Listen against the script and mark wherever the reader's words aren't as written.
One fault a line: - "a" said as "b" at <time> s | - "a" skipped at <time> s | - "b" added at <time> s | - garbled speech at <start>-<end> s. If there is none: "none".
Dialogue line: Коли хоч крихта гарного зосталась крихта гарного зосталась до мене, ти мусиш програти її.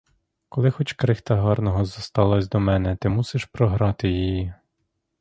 - "крихта гарного зосталась" skipped at 2.5 s